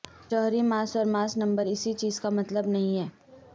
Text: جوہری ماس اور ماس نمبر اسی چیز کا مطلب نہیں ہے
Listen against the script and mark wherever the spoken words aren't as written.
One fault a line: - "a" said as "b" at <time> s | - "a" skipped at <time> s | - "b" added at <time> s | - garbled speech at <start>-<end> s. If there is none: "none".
none